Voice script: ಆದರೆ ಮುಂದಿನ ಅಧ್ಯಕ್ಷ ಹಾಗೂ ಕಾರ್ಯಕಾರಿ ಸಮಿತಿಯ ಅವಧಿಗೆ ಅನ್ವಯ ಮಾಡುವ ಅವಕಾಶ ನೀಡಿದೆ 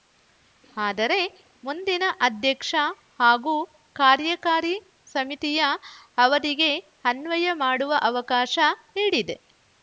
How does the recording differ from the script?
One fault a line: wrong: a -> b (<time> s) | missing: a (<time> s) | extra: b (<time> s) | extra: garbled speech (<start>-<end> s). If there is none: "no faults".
no faults